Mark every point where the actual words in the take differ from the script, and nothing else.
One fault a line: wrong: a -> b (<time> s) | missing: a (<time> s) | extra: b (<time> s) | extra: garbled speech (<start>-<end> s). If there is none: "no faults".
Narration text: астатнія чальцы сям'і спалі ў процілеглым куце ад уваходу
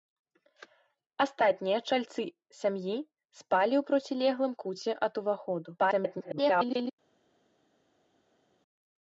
extra: garbled speech (5.8-6.9 s)